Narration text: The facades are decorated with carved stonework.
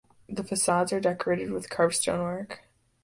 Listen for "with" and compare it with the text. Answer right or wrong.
right